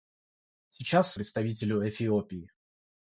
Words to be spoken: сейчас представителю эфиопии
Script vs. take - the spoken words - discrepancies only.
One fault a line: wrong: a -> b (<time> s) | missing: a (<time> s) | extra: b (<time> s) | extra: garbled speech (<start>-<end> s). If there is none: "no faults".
no faults